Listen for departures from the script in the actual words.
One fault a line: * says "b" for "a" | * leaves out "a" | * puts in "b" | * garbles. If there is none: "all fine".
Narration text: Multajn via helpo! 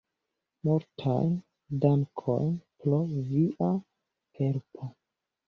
* puts in "dankojn pro"